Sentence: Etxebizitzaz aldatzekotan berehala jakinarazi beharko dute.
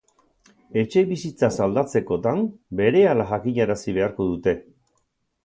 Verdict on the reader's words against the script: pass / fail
pass